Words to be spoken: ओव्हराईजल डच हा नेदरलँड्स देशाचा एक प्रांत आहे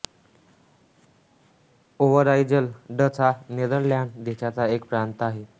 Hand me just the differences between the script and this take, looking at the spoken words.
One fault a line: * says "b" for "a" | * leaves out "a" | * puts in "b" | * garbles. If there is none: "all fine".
all fine